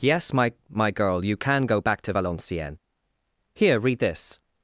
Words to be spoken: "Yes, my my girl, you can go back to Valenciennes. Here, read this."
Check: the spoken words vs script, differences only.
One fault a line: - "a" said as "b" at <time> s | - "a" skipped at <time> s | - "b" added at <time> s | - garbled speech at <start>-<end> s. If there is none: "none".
none